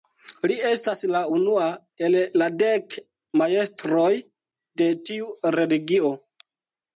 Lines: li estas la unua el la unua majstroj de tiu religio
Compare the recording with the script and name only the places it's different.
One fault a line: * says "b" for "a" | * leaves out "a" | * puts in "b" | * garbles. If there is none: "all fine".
* says "dek" for "unua"